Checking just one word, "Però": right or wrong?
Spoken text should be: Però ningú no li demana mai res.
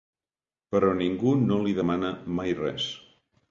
right